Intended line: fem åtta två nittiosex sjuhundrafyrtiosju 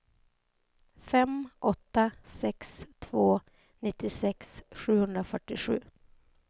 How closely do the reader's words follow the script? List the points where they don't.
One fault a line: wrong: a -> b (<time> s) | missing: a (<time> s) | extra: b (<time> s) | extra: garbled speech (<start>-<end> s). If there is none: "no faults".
extra: sex (2.2 s)